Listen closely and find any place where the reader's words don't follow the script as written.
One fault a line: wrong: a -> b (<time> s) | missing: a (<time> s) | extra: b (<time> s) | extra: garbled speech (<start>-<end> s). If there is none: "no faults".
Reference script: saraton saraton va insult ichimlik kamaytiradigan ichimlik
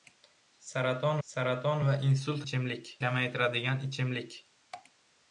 no faults